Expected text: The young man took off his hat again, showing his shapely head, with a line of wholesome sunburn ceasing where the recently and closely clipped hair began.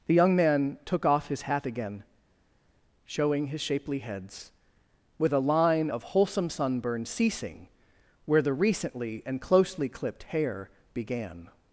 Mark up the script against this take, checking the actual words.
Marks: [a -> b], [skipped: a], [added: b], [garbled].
The young man took off his hat again, showing his shapely [head, -> heads] with a line of wholesome sunburn ceasing where the recently and closely clipped hair began.